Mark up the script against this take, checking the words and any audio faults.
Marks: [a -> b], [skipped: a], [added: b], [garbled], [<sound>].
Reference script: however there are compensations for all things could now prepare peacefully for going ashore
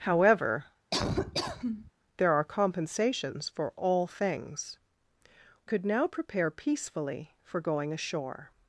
however [laugh] there are compensations for all things could now prepare peacefully for going ashore